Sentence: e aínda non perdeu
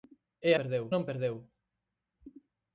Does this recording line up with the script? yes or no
no